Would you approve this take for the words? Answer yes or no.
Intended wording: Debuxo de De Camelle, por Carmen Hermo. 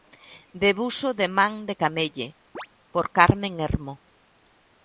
no